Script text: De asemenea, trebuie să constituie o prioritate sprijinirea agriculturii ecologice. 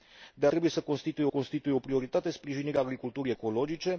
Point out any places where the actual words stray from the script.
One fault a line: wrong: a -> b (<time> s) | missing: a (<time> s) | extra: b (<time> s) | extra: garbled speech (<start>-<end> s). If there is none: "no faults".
missing: asemenea (0.5 s)
extra: constituie (1.3 s)